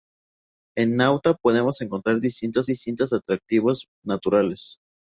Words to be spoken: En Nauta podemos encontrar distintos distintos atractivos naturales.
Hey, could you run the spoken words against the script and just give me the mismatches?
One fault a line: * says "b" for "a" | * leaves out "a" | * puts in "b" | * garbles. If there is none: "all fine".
all fine